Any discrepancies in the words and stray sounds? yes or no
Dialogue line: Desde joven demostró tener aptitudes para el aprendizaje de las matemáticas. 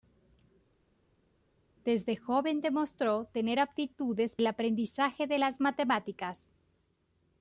yes